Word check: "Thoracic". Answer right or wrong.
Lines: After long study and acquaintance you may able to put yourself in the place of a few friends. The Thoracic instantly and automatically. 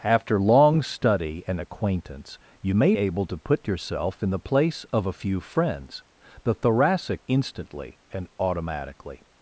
right